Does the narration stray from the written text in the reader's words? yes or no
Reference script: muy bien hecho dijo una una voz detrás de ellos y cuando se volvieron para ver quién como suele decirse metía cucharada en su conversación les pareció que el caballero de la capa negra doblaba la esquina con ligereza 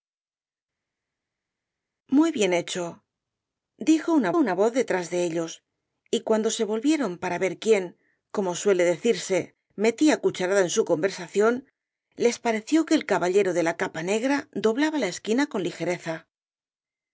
no